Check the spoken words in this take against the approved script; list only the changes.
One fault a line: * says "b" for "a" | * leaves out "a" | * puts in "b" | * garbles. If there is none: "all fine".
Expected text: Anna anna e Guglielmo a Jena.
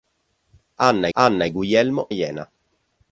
all fine